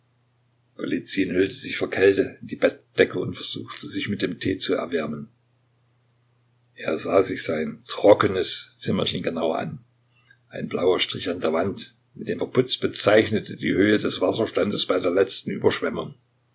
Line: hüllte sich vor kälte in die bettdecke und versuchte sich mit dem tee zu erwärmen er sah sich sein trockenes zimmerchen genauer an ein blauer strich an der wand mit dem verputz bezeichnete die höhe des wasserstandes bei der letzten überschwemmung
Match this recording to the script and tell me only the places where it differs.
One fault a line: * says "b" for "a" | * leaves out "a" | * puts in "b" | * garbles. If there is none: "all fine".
all fine